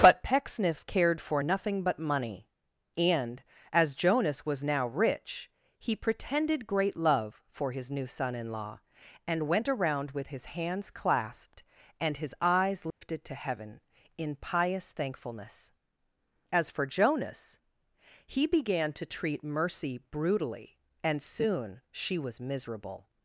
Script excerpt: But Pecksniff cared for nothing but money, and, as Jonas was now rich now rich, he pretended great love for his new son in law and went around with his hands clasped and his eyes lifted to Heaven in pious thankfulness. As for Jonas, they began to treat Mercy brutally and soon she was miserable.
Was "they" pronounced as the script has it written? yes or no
no